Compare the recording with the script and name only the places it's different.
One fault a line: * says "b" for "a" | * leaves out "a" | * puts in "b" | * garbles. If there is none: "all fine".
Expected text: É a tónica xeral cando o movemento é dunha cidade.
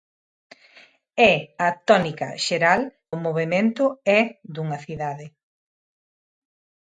* leaves out "cando"